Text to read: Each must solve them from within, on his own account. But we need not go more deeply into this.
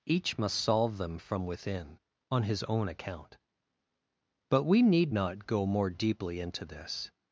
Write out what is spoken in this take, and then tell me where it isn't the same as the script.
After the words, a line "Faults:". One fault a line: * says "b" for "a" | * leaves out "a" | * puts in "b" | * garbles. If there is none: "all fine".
Each must solve them from within, on his own account. But we need not go more deeply into this.
Faults:
all fine